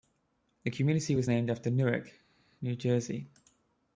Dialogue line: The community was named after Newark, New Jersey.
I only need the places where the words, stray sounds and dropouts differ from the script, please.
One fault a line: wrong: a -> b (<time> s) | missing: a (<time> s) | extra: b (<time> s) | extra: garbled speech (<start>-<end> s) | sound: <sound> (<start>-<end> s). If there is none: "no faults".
no faults